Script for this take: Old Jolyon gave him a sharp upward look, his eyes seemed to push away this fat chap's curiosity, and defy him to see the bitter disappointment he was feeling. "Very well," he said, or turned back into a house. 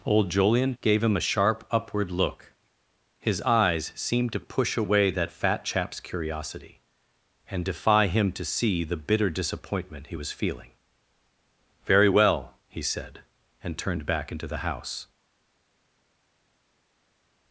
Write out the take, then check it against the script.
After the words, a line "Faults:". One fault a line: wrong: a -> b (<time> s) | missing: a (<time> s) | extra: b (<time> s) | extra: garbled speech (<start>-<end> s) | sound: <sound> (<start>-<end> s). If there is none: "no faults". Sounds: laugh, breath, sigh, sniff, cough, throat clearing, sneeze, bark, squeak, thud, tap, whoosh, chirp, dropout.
Old Jolyon gave him a sharp upward look, his eyes seemed to push away that fat chap's curiosity, and defy him to see the bitter disappointment he was feeling. "Very well," he said, and turned back into the house.
Faults:
wrong: this -> that (5.1 s)
wrong: or -> and (13.6 s)
wrong: a -> the (14.5 s)